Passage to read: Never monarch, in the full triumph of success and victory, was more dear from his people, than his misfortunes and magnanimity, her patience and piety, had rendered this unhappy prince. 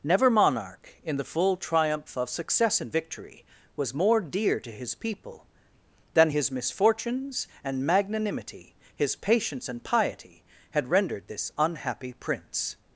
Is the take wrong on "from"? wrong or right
wrong